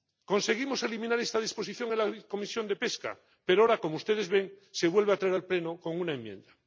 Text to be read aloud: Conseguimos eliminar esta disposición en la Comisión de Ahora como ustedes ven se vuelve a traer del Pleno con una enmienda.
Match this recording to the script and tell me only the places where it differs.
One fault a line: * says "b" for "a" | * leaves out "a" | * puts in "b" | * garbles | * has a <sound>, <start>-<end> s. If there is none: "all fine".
* puts in "Pesca pero"
* says "al" for "del"